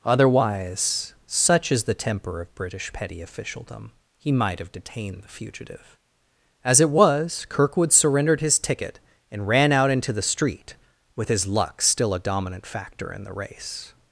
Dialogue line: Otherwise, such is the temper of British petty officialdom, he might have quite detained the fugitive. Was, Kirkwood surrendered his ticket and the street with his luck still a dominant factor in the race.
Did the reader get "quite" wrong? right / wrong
wrong